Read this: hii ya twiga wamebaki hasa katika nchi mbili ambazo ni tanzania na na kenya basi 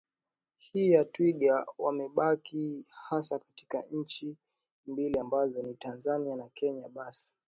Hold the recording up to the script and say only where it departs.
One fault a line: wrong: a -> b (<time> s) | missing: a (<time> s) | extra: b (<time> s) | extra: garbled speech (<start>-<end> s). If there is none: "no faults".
missing: na (6.5 s)